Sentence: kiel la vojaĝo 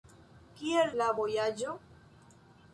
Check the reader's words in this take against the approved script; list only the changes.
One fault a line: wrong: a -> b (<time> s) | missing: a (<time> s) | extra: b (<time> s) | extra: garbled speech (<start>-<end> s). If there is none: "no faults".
no faults